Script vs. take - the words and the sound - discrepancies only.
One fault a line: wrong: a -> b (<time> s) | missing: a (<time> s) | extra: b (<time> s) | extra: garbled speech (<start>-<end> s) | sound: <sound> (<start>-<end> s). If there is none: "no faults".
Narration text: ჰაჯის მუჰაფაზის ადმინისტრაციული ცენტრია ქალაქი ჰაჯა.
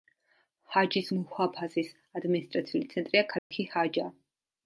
sound: dropout (3.4-3.5 s)